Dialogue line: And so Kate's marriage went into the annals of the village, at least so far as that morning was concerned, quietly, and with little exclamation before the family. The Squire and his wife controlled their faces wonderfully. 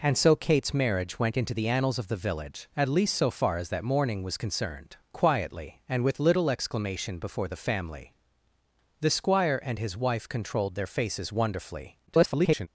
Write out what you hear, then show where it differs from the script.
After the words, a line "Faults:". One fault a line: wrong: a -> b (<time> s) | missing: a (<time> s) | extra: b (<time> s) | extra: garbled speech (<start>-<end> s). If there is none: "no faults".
And so Kate's marriage went into the annals of the village, at least so far as that morning was concerned, quietly, and with little exclamation before the family. The Squire and his wife controlled their faces wonderfully. [garbled]
Faults:
extra: garbled speech (12.1-12.7 s)